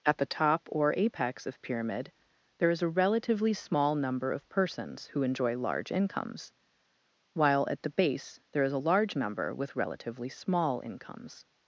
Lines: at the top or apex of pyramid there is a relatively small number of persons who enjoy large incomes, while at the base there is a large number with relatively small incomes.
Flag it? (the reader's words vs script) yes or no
no